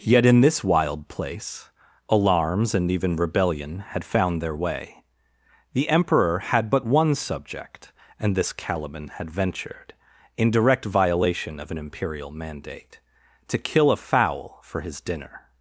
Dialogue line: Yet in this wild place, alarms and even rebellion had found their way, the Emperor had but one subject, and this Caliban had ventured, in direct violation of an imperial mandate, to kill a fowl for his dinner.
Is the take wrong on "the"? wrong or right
right